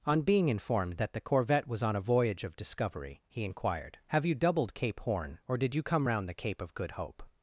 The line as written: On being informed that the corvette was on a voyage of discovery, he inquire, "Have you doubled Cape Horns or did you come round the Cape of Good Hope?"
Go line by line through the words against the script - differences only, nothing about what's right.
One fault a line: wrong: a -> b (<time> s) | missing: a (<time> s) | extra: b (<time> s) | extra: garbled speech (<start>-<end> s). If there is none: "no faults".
wrong: inquire -> inquired (3.5 s)
wrong: Horns -> Horn (5.0 s)